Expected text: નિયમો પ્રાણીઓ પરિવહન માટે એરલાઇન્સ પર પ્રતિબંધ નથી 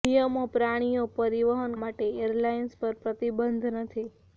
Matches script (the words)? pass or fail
pass